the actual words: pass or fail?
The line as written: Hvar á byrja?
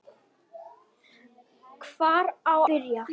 pass